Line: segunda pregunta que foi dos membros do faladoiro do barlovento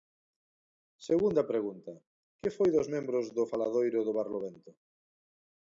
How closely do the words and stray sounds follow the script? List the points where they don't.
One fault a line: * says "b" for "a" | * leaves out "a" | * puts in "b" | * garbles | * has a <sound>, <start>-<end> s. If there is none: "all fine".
all fine